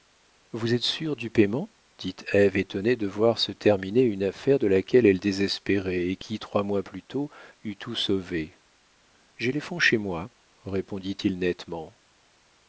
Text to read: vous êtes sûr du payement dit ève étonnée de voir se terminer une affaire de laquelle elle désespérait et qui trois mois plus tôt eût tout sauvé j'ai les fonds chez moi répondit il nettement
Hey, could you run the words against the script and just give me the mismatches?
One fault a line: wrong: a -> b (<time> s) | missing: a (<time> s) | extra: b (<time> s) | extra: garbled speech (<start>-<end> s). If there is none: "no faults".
no faults